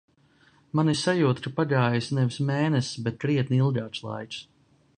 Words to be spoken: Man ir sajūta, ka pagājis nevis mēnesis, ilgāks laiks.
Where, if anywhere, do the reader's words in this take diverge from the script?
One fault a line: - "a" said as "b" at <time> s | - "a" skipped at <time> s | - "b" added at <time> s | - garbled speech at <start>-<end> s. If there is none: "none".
- "bet krietni" added at 3.1 s